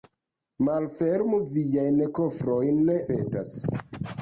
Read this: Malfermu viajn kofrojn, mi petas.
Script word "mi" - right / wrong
wrong